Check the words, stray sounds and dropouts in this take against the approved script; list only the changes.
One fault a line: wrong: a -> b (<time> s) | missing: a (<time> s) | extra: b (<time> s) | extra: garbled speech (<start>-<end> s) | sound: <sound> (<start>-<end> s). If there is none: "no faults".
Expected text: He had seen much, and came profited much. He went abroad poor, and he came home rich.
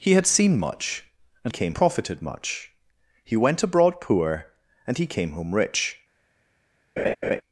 sound: laugh (7.0-7.4 s)